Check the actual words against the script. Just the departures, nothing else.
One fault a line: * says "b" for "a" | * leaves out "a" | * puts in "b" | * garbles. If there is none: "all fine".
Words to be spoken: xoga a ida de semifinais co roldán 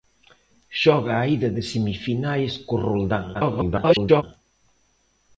* garbles